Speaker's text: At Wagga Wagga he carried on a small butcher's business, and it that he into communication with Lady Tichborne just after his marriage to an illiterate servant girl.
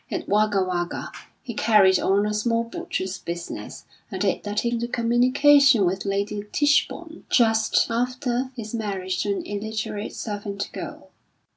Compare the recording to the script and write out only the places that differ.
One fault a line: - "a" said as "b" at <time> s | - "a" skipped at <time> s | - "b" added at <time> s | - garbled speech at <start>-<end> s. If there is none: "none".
none